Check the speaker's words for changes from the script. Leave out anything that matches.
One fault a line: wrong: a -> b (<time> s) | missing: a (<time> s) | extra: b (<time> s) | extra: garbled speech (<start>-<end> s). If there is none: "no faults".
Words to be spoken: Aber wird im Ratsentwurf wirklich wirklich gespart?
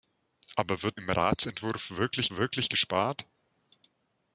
no faults